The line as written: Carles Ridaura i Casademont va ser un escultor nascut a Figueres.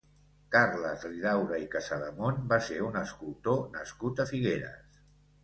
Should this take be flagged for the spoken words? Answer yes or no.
no